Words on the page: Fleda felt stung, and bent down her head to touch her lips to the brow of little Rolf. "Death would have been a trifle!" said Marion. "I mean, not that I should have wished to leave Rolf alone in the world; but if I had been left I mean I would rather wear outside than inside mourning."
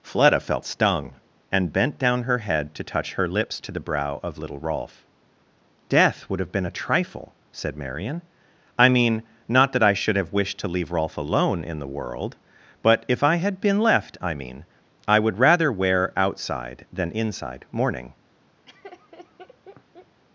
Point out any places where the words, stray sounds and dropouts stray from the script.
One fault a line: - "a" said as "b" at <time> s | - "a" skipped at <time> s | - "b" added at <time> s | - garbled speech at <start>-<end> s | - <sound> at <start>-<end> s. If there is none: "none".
- laugh at 18.7-20.2 s